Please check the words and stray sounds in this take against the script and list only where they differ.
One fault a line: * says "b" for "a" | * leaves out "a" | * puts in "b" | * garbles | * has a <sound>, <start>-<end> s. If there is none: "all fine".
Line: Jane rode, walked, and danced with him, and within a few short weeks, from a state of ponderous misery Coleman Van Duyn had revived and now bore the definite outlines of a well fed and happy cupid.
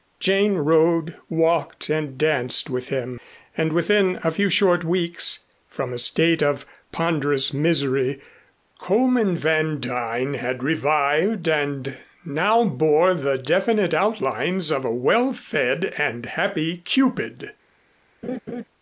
* has a laugh, 18.2-18.6 s